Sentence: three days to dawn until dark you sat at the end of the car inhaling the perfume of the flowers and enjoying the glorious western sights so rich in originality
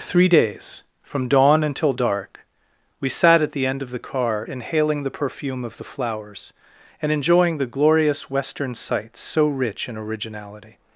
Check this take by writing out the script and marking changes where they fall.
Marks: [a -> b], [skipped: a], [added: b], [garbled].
three days [to -> from] dawn until dark [you -> we] sat at the end of the car inhaling the perfume of the flowers and enjoying the glorious western sights so rich in originality